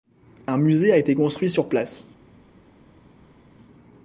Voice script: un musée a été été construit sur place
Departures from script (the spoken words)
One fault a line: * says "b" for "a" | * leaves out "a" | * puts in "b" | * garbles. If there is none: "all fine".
* leaves out "été"